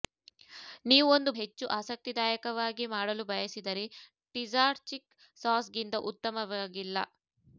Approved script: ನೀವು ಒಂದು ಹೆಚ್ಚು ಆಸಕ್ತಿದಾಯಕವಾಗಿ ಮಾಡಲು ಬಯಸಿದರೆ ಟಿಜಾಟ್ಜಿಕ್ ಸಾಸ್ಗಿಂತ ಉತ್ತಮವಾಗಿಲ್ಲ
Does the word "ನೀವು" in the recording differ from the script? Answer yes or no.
no